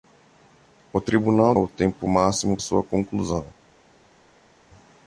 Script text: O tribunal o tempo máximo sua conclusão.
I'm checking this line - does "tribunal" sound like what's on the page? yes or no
yes